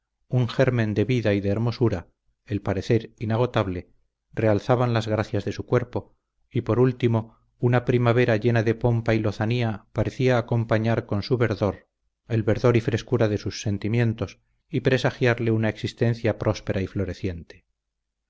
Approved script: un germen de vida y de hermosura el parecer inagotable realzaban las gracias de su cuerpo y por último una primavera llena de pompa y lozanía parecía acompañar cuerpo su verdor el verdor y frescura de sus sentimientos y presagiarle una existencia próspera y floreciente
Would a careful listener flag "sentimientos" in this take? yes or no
no